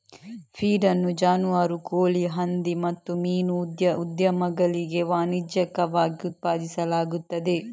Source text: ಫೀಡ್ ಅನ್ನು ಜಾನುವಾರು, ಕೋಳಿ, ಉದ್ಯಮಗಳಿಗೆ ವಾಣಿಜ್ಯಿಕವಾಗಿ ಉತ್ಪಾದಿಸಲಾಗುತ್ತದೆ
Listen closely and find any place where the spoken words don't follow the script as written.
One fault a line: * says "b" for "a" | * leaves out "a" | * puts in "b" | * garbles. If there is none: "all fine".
* puts in "ಹಂದಿ ಮತ್ತು ಮೀನು"